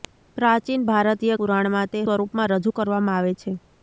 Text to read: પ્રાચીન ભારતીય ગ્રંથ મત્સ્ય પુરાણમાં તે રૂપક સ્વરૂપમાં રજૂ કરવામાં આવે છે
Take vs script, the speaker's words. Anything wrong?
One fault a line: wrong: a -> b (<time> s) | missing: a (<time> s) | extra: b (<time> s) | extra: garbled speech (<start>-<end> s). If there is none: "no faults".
missing: ગ્રંથ મત્સ્ય (1.4 s)
missing: રૂપક (2.1 s)